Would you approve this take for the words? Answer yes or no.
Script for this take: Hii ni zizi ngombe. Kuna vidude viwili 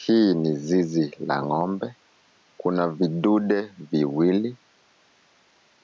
no